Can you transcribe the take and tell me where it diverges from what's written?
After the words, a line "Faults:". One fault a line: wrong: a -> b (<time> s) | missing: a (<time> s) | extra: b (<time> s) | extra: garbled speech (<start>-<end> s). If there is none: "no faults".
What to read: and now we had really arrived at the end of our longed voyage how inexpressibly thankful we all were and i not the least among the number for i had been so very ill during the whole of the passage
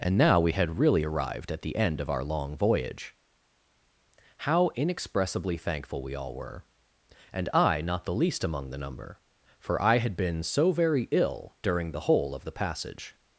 and now we had really arrived at the end of our long voyage how inexpressibly thankful we all were and i not the least among the number for i had been so very ill during the whole of the passage
Faults:
wrong: longed -> long (2.2 s)